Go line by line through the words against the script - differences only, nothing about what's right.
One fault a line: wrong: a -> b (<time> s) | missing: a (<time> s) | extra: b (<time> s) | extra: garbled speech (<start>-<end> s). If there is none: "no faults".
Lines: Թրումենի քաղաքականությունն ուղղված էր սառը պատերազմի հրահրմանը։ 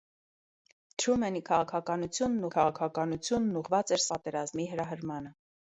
extra: քաղաքականությունն (2.6 s)
missing: սառը (4.1 s)